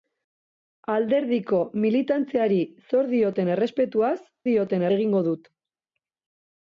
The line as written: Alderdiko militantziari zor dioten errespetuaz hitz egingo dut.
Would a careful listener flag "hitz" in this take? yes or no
yes